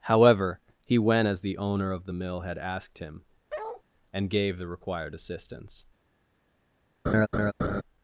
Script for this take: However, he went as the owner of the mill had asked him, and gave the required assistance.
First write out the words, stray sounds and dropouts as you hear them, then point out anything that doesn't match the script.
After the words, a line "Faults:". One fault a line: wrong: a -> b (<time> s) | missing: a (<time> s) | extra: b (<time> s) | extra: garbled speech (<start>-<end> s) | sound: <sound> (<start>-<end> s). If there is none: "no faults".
However, he went as the owner of the mill had asked him, and gave the required assistance.
Faults:
sound: bark (3.5-3.8 s)
sound: laugh (7.1-7.8 s)